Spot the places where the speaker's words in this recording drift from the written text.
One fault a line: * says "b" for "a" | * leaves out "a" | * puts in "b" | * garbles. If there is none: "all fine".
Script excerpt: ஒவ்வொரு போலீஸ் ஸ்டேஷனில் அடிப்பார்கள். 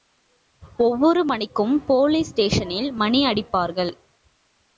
* puts in "மணிக்கும்"
* puts in "மணி"